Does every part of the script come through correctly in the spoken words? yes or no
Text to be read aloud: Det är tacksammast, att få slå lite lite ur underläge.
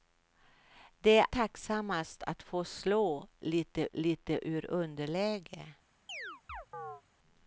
yes